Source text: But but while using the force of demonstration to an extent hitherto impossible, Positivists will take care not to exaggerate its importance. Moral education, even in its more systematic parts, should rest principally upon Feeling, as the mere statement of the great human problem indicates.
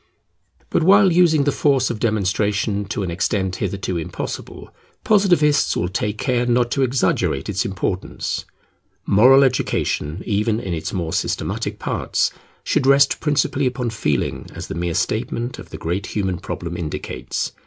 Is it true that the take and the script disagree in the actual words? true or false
true